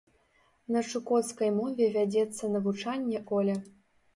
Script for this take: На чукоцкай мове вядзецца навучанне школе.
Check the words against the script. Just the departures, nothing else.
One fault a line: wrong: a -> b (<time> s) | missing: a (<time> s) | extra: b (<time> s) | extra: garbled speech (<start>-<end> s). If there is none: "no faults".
no faults